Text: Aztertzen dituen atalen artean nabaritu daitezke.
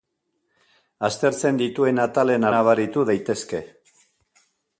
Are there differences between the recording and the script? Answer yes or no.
yes